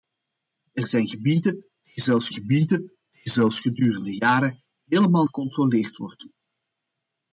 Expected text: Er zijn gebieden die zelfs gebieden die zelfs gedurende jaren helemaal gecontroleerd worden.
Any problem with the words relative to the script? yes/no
no